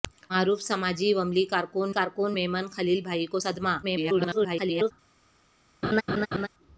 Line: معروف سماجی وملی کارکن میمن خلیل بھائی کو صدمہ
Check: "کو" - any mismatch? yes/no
no